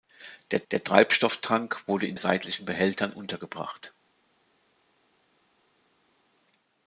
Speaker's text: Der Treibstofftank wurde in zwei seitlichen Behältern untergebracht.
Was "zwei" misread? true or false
true